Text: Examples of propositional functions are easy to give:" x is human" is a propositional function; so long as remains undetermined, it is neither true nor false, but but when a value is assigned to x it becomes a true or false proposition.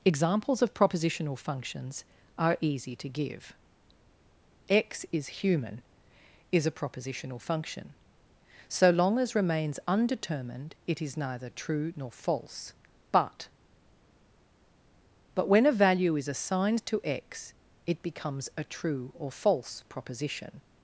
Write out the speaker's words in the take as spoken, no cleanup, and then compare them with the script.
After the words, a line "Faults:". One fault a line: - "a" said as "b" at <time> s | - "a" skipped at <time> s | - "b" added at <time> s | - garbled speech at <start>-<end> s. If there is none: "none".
Examples of propositional functions are easy to give:" x is human" is a propositional function; so long as remains undetermined, it is neither true nor false, but but when a value is assigned to x it becomes a true or false proposition.
Faults:
none